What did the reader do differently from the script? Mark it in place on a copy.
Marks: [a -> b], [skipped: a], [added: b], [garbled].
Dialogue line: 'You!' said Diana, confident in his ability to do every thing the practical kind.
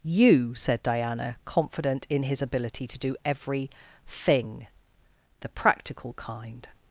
'You!' said Diana, confident in his ability to do every thing the practical kind.